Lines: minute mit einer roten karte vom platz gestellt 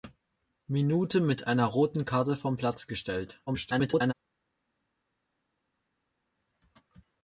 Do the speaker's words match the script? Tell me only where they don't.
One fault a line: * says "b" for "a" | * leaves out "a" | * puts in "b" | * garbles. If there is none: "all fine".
* garbles